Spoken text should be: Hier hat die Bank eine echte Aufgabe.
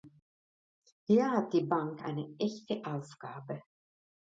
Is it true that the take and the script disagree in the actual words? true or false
false